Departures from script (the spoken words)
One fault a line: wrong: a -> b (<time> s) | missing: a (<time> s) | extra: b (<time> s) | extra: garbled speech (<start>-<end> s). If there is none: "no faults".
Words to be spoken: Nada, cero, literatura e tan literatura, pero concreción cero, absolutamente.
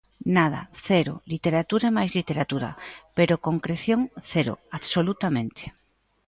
wrong: tan -> máis (2.0 s)